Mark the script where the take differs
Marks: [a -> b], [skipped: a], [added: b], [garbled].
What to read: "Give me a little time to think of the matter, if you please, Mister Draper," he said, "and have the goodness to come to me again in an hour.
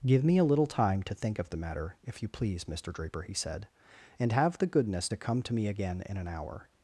"Give me a little time to think of the matter, if you please, Mister Draper," he said, "and have the goodness to come to me again in an hour.